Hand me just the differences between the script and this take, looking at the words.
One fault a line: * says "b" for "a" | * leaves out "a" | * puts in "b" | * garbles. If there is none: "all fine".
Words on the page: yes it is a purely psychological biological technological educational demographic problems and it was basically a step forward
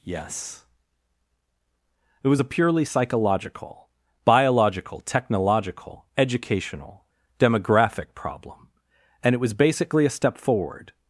* says "was" for "is"
* says "problem" for "problems"